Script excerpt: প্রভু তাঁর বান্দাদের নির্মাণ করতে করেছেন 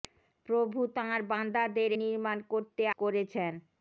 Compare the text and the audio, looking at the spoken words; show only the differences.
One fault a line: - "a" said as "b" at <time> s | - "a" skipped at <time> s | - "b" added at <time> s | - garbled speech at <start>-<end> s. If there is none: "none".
none